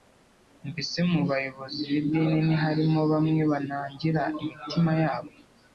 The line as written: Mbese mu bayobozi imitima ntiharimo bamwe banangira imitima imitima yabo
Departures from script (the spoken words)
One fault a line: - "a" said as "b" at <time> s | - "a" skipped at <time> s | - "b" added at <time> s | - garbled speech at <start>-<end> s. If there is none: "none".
- "imitima" said as "b'idini" at 1.9 s
- "imitima" skipped at 4.9 s